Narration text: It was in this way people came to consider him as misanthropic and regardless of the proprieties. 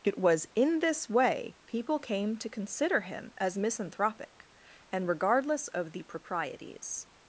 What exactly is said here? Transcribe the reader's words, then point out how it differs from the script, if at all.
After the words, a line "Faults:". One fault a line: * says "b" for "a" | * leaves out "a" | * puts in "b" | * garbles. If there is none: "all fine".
It was in this way people came to consider him as misanthropic and regardless of the proprieties.
Faults:
all fine